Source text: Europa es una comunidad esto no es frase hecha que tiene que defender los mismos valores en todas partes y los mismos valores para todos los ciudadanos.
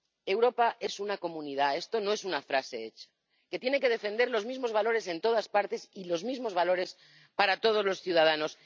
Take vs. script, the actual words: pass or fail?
fail